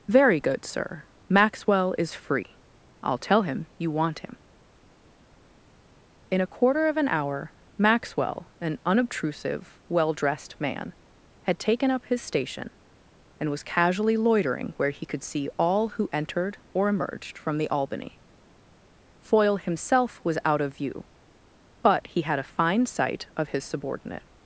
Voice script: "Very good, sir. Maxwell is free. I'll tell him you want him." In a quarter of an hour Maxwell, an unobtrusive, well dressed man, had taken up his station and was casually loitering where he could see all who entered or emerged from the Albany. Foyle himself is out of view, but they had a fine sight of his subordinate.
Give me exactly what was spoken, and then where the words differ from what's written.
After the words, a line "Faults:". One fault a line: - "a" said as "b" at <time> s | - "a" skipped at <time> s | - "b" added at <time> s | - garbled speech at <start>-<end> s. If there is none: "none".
"Very good, sir. Maxwell is free. I'll tell him you want him." In a quarter of an hour Maxwell, an unobtrusive, well dressed man, had taken up his station and was casually loitering where he could see all who entered or emerged from the Albany. Foyle himself was out of view, but he had a fine sight of his subordinate.
Faults:
- "is" said as "was" at 20.2 s
- "they" said as "he" at 22.1 s